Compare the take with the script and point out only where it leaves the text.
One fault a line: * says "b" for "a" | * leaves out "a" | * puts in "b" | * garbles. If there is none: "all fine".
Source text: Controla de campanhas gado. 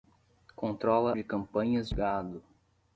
all fine